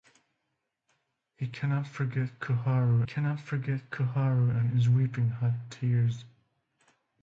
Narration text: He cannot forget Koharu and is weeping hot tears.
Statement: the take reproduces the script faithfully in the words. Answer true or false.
false